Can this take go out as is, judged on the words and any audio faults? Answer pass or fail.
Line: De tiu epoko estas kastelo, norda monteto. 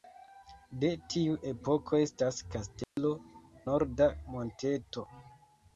fail